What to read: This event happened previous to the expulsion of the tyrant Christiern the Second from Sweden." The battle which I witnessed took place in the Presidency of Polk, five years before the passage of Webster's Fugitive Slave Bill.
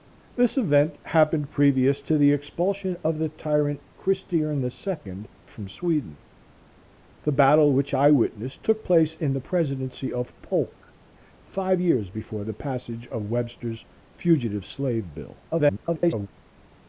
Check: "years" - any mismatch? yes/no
no